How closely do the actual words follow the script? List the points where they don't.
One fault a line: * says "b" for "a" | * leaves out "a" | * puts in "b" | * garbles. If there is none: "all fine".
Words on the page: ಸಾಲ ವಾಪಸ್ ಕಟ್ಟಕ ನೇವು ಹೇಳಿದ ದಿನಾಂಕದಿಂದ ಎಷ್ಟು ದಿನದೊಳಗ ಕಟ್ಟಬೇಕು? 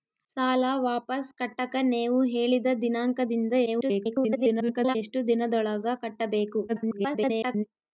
* garbles
* garbles